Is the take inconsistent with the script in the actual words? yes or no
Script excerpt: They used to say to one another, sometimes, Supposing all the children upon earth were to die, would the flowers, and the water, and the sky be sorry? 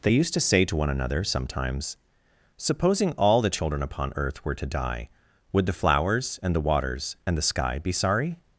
yes